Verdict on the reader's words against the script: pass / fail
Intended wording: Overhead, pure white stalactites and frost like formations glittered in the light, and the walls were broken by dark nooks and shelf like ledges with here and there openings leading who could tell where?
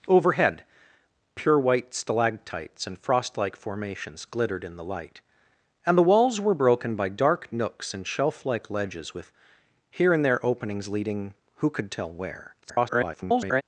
fail